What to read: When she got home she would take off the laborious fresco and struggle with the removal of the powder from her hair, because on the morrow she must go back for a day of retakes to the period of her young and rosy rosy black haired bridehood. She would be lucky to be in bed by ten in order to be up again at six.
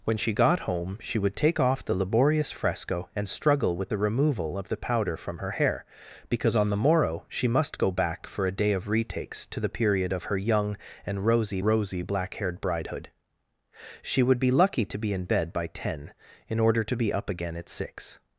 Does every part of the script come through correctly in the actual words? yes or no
yes